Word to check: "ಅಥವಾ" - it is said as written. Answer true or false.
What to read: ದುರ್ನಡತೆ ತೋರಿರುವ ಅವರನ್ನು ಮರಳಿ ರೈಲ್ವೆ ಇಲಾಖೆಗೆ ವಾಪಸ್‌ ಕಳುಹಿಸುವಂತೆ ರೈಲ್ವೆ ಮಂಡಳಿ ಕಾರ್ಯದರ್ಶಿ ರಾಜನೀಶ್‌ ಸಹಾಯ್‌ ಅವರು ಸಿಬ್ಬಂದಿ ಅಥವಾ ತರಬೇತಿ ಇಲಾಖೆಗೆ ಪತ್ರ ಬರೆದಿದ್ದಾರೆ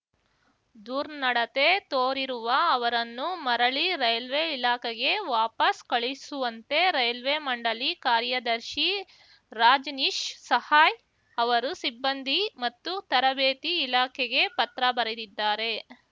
false